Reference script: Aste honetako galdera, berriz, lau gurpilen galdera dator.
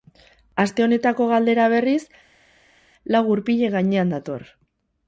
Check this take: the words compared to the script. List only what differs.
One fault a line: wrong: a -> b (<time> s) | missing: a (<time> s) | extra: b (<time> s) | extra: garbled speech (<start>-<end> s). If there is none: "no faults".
wrong: galdera -> gainean (3.8 s)